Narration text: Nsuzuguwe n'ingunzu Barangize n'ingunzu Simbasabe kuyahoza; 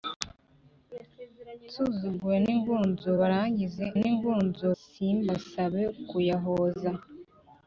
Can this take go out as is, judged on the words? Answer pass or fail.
pass